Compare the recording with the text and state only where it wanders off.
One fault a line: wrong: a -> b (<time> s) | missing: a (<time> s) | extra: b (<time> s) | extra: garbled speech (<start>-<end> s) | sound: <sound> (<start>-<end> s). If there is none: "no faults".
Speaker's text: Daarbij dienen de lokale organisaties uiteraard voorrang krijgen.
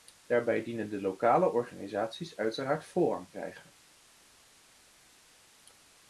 no faults